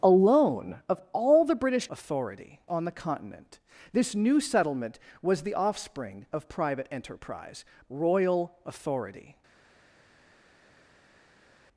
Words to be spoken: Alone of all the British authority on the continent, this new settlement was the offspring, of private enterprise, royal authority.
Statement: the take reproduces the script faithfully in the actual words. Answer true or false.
true